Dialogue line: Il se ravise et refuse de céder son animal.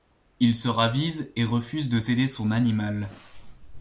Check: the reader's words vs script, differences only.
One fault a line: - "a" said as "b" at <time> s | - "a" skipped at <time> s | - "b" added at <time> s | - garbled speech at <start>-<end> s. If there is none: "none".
none